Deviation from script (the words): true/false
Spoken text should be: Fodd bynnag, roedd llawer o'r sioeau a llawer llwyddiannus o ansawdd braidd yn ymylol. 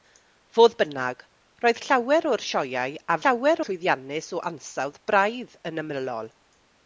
false